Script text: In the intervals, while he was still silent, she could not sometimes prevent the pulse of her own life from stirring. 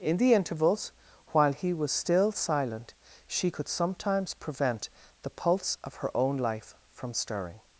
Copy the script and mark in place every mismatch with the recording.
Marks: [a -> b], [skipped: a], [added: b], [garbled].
In the intervals, while he was still silent, she could [skipped: not] sometimes prevent the pulse of her own life from stirring.